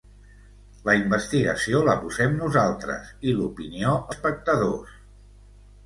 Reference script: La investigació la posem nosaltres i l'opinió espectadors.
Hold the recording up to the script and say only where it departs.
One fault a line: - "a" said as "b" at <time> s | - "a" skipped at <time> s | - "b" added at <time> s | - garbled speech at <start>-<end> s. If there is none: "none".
none